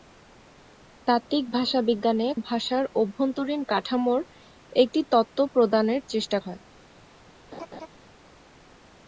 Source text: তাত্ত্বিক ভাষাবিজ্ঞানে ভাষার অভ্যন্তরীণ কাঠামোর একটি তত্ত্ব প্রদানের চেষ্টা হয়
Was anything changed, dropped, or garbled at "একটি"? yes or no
no